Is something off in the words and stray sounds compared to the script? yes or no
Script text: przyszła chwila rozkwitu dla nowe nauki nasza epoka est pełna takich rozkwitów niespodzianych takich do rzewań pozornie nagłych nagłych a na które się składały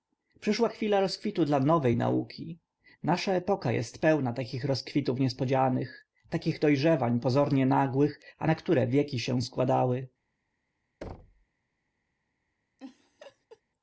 yes